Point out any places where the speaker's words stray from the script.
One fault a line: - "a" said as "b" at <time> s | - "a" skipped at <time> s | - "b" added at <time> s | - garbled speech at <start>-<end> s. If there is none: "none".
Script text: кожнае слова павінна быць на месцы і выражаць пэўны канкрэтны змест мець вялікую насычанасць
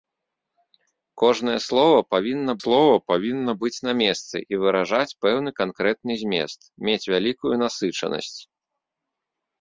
- "слова павінна" added at 2.6 s